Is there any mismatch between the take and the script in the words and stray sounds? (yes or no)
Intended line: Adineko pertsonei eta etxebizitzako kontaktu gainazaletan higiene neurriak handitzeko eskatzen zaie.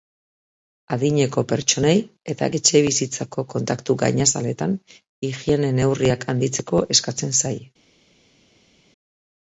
no